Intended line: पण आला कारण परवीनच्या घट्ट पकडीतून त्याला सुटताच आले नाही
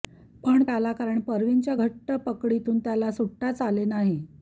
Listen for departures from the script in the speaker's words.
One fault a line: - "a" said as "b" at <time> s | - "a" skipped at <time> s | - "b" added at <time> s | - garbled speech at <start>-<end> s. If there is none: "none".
none